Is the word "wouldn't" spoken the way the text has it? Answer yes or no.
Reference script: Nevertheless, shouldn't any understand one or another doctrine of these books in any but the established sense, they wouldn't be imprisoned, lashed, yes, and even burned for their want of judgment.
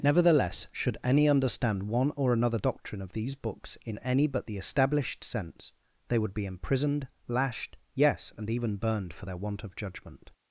no